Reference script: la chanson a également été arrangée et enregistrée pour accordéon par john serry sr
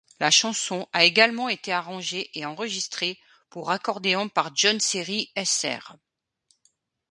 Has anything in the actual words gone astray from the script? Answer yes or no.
no